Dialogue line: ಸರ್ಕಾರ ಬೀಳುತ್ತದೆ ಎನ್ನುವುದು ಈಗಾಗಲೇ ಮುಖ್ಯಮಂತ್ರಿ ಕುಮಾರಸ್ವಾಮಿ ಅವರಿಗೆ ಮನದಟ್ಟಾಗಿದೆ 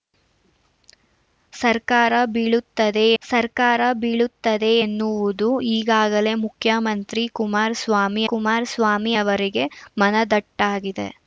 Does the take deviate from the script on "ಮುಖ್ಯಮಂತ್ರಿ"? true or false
false